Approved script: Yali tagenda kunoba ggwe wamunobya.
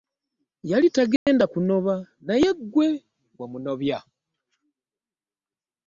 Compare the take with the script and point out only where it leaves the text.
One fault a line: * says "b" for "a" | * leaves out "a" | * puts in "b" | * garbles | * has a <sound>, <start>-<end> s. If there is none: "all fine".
* has a dropout, 1.2-1.3 s
* puts in "naye"